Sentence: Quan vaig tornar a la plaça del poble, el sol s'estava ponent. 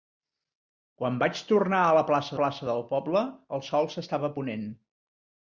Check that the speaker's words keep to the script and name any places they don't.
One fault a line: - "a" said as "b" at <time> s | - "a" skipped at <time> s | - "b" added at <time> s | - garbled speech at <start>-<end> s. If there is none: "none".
- "plaça" added at 2.4 s